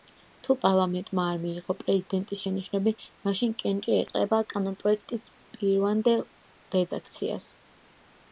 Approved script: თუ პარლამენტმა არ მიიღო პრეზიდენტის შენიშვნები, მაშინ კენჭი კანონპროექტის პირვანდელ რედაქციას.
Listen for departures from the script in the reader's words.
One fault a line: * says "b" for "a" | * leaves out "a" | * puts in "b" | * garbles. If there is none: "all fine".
* puts in "ეყრება"